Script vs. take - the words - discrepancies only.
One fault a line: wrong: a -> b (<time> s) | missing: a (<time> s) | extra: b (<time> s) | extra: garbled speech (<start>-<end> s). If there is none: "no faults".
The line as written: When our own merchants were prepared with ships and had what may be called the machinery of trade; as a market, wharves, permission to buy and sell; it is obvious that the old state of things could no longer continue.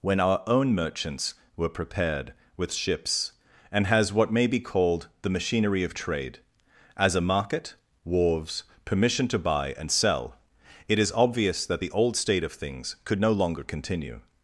wrong: had -> has (3.9 s)